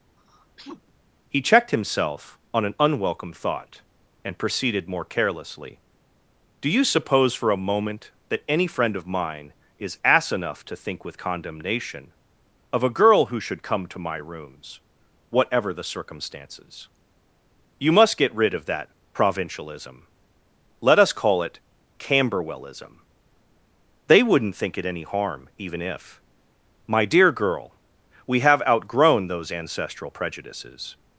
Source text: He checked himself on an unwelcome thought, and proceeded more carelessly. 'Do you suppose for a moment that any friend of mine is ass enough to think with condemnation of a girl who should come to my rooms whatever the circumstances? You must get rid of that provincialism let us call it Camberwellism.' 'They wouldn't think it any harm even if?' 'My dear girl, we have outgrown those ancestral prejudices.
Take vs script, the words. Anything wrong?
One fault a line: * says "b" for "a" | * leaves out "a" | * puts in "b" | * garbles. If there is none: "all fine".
all fine